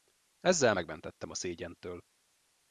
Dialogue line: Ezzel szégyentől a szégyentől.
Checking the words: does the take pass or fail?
fail